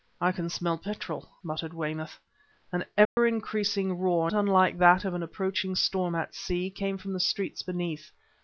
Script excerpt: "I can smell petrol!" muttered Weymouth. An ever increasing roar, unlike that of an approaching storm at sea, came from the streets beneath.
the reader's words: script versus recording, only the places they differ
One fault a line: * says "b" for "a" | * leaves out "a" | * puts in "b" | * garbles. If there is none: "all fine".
all fine